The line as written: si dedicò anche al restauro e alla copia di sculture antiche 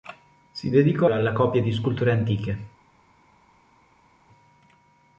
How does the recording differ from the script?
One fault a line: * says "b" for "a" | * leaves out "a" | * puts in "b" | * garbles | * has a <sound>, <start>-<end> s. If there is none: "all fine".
* leaves out "anche al restauro"